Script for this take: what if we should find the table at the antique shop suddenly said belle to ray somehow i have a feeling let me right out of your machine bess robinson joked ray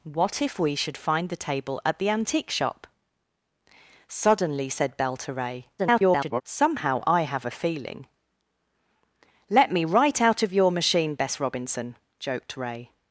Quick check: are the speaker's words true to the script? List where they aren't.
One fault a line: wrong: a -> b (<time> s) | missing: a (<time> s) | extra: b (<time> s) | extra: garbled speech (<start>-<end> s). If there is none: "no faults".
extra: garbled speech (5.8-6.4 s)